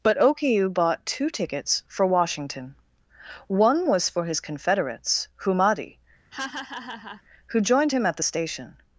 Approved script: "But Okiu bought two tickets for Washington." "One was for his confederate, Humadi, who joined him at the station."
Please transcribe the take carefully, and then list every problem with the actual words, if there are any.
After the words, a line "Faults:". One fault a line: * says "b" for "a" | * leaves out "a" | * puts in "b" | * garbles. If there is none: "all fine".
"But Okiu bought two tickets for Washington." "One was for his confederates, Humadi, who joined him at the station."
Faults:
* says "confederates" for "confederate"